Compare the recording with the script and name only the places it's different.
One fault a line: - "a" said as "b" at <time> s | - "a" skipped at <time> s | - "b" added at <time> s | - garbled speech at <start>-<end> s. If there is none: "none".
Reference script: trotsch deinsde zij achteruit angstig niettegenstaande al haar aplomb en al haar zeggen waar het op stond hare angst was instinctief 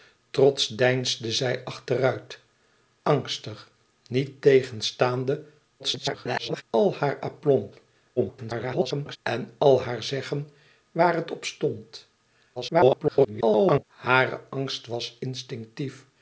- garbled speech at 5.8-6.6 s
- garbled speech at 8.2-9.2 s
- garbled speech at 12.6-13.8 s